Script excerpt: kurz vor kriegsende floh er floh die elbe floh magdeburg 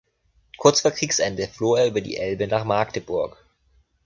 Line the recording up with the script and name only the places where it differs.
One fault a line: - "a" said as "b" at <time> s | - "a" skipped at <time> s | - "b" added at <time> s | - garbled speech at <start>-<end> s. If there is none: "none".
- "floh" said as "über" at 1.9 s
- "floh" said as "nach" at 2.5 s